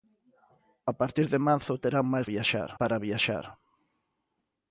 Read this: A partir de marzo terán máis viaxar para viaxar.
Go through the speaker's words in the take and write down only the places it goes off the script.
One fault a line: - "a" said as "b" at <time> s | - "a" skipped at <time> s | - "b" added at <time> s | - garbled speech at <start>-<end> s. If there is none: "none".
none